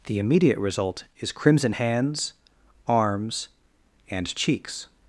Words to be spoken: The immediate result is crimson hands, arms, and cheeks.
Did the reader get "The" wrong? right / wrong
right